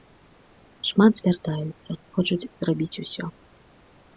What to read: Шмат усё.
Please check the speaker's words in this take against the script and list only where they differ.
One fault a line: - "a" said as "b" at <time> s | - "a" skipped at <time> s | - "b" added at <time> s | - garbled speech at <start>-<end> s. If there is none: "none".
- "звяртаюцца хочуць зрабіць" added at 1.2 s